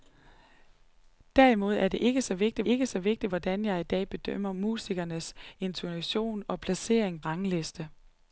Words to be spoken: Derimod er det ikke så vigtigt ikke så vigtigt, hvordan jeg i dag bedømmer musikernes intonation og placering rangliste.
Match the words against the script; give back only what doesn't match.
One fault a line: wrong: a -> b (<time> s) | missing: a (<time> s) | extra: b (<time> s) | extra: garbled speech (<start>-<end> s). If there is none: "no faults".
no faults